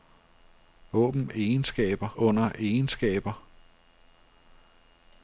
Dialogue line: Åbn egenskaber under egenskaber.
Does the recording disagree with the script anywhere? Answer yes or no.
no